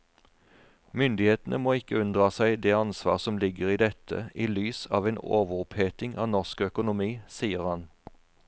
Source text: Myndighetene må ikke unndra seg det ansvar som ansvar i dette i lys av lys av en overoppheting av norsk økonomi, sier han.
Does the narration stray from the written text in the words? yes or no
yes